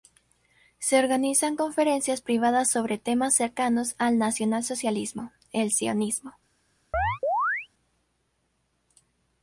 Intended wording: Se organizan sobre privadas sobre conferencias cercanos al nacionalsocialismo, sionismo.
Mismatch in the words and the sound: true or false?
true